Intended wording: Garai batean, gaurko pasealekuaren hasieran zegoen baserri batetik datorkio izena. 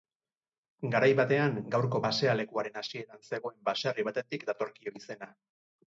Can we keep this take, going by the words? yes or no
yes